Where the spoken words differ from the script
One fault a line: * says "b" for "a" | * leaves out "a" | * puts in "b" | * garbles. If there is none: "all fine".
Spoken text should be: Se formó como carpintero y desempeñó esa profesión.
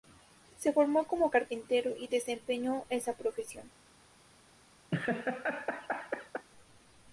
all fine